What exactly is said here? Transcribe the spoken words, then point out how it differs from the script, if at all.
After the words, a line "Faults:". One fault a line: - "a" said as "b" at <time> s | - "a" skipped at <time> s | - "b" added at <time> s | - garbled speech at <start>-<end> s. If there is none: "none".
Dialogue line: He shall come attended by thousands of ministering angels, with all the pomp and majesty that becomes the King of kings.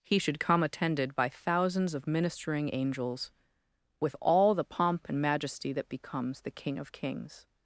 He should come attended by thousands of ministering angels, with all the pomp and majesty that becomes the King of kings.
Faults:
- "shall" said as "should" at 0.2 s